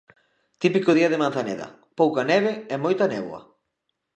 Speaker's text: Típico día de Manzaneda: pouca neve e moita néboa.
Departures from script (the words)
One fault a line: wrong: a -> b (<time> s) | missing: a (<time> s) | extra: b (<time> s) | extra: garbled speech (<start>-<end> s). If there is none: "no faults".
no faults